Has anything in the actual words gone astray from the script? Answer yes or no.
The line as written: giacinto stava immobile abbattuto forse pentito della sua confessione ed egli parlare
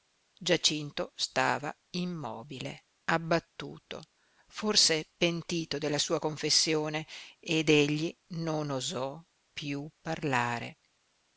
yes